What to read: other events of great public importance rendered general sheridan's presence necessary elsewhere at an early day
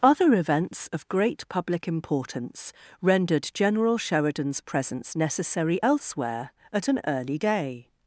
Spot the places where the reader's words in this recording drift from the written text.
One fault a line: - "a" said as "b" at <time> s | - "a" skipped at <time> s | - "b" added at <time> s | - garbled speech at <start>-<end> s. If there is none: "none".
none